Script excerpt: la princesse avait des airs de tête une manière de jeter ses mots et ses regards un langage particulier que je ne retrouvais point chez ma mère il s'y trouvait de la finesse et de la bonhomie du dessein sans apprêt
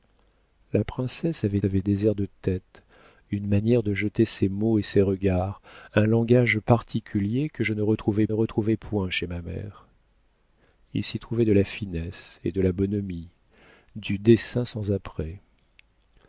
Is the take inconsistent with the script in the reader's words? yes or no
yes